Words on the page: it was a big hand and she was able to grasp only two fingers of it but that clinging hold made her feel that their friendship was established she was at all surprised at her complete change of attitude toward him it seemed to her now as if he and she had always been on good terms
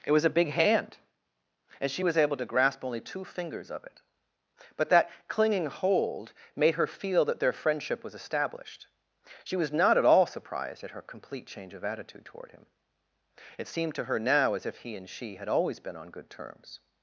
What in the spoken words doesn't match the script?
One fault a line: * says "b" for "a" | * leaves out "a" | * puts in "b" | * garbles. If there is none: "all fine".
* puts in "not"